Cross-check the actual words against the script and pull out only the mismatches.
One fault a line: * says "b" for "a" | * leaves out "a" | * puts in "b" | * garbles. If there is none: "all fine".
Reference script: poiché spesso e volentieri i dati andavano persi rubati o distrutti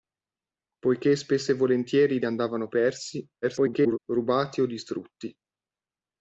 * leaves out "dati"
* garbles